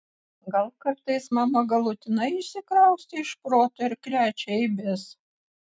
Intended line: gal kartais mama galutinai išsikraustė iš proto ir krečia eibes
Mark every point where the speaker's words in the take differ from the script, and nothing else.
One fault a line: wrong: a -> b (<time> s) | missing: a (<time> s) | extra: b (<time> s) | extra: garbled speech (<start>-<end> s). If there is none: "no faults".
no faults